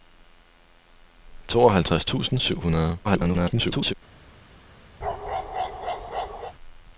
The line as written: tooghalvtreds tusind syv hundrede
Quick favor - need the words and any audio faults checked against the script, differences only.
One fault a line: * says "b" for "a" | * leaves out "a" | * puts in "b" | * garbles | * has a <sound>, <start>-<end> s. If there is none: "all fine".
* garbles
* has a bark, 5.0-6.5 s